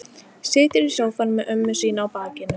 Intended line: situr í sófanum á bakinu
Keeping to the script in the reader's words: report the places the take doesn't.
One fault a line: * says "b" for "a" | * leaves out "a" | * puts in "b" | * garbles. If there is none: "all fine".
* puts in "með ömmu sína"